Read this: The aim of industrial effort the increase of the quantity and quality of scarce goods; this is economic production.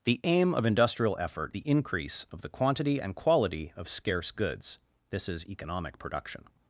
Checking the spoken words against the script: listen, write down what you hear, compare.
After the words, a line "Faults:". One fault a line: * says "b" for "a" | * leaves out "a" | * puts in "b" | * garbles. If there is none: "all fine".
The aim of industrial effort the increase of the quantity and quality of scarce goods; this is economic production.
Faults:
all fine